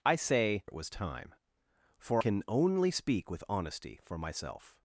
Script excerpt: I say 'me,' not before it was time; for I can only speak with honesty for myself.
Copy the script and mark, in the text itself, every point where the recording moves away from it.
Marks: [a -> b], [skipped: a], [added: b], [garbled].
I say [skipped: 'me,' not before] it was time; for [skipped: I] can only speak with honesty for myself.